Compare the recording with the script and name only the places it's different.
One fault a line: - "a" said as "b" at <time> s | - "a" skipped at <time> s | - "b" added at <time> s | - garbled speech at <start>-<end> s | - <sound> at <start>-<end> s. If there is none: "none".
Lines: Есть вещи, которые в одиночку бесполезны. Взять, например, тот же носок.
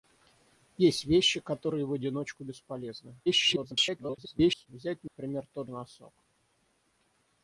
- garbled speech at 3.3-4.7 s
- dropout at 5.1-5.2 s
- "же" skipped at 5.7 s